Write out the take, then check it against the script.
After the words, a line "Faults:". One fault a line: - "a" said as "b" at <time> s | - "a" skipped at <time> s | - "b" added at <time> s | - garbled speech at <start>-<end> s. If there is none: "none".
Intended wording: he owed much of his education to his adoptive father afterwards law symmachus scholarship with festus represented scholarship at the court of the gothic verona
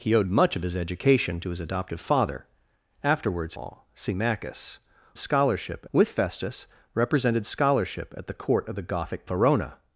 he owed much of his education to his adoptive father afterwards law symmachus scholarship with festus represented scholarship at the court of the gothic verona
Faults:
none